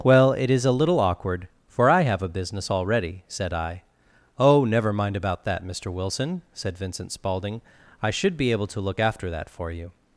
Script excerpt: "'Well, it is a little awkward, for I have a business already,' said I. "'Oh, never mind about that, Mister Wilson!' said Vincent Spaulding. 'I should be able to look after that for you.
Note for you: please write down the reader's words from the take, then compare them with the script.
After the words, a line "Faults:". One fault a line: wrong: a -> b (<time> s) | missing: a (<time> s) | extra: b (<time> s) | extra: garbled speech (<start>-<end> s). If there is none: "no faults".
"'Well, it is a little awkward, for I have a business already,' said I. "'Oh, never mind about that, Mister Wilson!' said Vincent Spaulding. 'I should be able to look after that for you.
Faults:
no faults